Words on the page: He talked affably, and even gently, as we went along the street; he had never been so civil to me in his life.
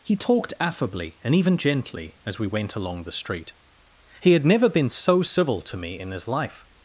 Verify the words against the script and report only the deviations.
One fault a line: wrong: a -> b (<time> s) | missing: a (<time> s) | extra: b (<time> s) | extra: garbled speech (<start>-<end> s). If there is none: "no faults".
no faults